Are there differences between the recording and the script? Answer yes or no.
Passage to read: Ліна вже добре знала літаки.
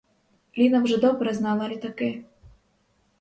no